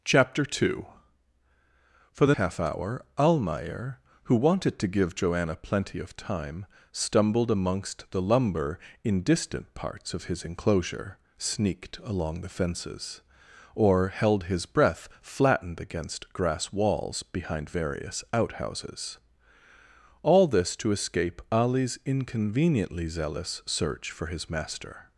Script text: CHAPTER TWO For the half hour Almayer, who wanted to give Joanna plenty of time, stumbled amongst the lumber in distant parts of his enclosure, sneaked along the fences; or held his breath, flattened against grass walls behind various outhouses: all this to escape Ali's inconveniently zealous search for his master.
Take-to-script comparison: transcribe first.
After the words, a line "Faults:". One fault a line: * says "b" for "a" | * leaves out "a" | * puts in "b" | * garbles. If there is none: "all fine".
CHAPTER TWO For the half hour Almayer, who wanted to give Joanna plenty of time, stumbled amongst the lumber in distant parts of his enclosure, sneaked along the fences; or held his breath, flattened against grass walls behind various outhouses: all this to escape Ali's inconveniently zealous search for his master.
Faults:
all fine